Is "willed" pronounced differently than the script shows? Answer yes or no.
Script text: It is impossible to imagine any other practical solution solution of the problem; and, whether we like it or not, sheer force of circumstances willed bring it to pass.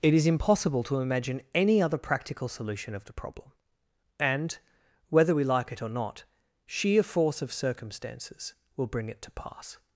yes